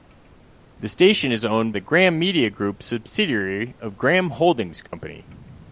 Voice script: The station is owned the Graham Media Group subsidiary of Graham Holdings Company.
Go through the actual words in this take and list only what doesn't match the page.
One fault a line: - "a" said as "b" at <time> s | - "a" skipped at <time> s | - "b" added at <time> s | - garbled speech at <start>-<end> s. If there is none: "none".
none